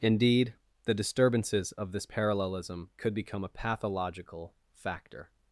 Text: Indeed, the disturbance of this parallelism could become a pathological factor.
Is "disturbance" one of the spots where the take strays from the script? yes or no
yes